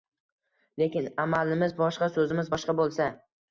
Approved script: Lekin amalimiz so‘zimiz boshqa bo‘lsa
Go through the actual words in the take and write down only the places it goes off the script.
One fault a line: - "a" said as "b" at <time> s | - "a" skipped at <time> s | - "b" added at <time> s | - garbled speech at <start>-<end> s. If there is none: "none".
- "boshqa" added at 1.8 s